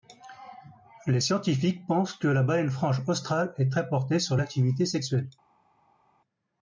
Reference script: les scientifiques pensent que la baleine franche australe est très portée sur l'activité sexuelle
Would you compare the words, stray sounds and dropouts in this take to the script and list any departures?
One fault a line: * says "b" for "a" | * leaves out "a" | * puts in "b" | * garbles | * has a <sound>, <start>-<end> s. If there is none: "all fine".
all fine